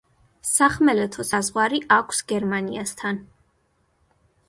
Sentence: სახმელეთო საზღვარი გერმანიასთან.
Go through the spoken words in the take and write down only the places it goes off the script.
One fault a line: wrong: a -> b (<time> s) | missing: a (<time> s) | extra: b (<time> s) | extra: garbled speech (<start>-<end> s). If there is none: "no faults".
extra: აქვს (2.0 s)